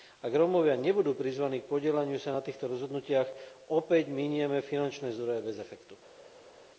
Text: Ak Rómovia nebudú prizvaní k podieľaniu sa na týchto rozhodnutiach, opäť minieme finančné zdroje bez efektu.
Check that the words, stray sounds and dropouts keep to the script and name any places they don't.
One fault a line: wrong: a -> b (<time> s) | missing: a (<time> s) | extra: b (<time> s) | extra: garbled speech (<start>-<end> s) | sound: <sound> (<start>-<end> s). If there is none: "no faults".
no faults